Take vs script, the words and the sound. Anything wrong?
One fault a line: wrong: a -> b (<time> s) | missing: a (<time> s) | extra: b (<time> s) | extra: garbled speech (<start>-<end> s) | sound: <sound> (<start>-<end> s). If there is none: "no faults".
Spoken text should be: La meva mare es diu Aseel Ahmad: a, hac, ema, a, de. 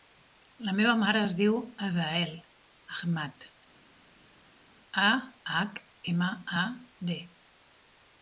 no faults